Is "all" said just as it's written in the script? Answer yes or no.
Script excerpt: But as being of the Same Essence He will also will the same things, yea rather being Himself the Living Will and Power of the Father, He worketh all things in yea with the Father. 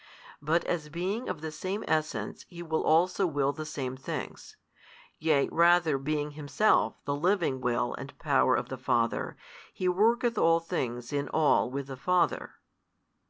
yes